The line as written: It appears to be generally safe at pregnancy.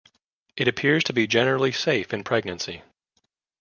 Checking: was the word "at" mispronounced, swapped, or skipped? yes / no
yes